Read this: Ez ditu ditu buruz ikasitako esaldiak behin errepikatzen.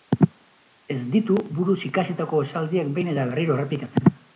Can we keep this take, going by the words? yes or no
no